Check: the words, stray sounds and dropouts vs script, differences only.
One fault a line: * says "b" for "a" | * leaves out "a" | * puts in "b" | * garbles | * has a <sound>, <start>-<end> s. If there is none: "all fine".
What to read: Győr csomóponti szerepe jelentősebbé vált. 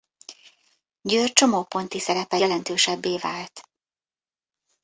all fine